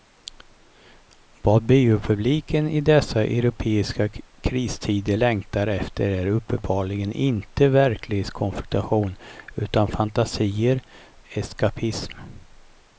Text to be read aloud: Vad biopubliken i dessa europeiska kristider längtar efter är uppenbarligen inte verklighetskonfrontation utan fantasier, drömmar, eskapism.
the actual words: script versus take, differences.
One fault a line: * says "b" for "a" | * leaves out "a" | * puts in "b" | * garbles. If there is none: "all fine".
* leaves out "drömmar"